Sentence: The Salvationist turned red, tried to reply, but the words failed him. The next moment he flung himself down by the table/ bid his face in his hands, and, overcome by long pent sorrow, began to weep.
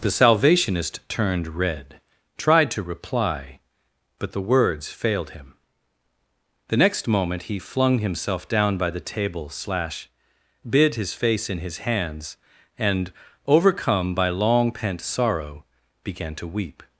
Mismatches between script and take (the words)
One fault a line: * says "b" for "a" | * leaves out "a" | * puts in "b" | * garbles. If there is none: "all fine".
* puts in "slash"